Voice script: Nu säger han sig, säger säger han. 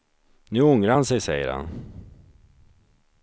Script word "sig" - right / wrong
right